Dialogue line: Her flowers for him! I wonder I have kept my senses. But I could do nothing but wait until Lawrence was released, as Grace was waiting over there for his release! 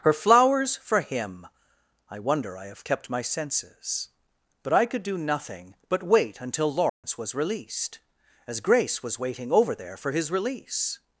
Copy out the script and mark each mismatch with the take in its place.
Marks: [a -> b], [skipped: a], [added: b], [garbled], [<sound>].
Her flowers for him! I wonder I have kept my senses. But I could do nothing but wait until Lawrence [dropout] was released, as Grace was waiting over there for his release!